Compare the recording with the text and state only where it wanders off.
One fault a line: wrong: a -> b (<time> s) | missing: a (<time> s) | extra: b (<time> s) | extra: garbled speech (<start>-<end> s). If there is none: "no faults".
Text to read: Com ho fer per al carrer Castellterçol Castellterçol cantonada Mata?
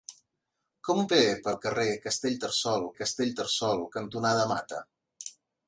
no faults